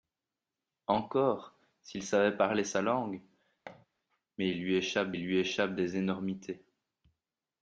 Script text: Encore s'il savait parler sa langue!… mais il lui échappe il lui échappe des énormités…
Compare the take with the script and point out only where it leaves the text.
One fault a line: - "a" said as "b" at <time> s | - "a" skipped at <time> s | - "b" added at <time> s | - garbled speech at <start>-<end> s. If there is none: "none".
none